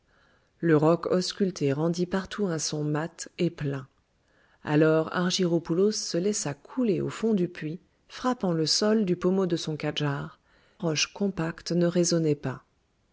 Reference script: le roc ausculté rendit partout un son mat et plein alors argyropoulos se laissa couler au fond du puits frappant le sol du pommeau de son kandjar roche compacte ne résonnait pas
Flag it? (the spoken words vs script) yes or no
no